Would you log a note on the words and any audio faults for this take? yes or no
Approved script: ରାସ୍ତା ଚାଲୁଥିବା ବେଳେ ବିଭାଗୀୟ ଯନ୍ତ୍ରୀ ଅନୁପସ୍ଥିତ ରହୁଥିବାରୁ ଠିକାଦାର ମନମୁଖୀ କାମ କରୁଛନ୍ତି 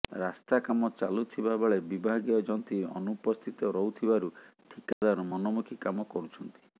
yes